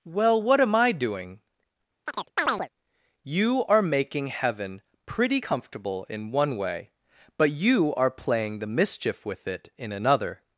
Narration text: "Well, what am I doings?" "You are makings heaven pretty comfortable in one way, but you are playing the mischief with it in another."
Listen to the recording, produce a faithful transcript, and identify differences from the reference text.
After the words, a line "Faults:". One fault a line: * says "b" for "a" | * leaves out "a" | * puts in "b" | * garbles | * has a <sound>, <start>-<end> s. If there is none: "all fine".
"Well, what am I doing?" "You are making heaven pretty comfortable in one way, but you are playing the mischief with it in another."
Faults:
* says "doing" for "doings"
* has a chirp, 2.1-2.7 s
* says "making" for "makings"